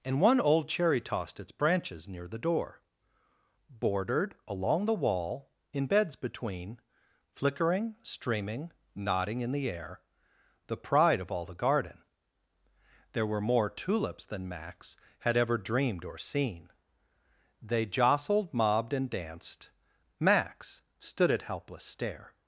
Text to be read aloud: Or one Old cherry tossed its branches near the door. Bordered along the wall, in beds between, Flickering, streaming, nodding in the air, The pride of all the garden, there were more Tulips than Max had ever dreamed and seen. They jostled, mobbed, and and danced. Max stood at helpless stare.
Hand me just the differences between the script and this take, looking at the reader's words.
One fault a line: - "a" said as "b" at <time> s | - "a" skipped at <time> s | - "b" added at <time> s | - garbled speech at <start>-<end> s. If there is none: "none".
- "Or" said as "And" at 0.0 s
- "and" said as "or" at 16.0 s
- "and" skipped at 19.1 s